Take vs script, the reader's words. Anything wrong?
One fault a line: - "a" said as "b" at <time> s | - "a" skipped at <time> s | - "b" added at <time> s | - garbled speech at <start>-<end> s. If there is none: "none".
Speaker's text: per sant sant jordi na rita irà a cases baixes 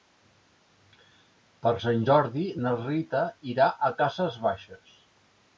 - "sant" skipped at 2.1 s